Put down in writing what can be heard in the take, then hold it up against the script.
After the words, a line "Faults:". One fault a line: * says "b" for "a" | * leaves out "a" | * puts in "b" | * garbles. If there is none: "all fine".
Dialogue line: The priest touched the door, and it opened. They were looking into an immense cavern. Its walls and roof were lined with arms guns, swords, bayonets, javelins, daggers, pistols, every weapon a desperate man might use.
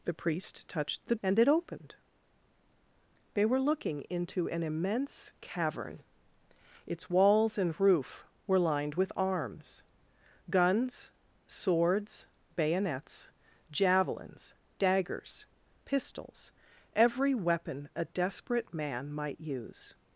The priest touched the and it opened. They were looking into an immense cavern. Its walls and roof were lined with arms guns, swords, bayonets, javelins, daggers, pistols, every weapon a desperate man might use.
Faults:
* leaves out "door"